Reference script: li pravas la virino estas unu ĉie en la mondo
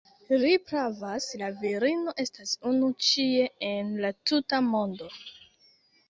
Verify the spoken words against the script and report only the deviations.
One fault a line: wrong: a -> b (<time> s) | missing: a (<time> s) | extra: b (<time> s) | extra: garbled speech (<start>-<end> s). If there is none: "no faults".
extra: tuta (4.3 s)